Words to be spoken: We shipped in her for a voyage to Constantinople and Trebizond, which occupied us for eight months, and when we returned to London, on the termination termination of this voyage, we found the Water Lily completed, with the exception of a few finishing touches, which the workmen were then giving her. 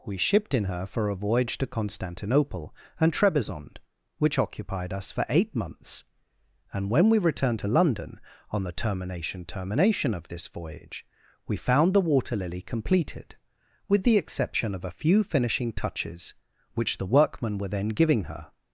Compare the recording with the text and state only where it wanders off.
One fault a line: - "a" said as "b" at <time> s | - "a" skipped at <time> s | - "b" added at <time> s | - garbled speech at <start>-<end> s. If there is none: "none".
none